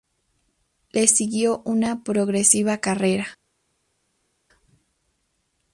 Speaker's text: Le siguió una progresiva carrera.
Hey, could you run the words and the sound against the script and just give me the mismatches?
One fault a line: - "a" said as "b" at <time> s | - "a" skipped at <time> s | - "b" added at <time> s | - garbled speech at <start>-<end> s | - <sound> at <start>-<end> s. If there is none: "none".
none